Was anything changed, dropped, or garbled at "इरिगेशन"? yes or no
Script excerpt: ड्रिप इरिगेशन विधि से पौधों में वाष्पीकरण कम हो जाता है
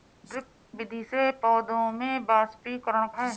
yes